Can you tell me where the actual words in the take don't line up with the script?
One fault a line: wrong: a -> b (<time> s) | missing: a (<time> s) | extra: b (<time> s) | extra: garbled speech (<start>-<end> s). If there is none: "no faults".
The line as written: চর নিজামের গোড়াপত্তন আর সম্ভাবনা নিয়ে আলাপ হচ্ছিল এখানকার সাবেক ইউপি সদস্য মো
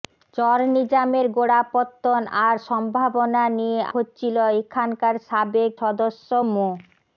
missing: আলাপ (3.8 s)
missing: ইউপি (5.7 s)